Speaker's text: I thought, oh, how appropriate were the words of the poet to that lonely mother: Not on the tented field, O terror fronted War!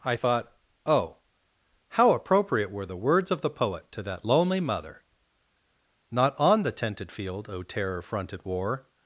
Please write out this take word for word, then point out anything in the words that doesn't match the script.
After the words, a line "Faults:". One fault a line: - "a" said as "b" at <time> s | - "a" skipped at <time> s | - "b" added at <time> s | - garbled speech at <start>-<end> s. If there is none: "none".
I thought, oh, how appropriate were the words of the poet to that lonely mother: Not on the tented field, O terror fronted War!
Faults:
none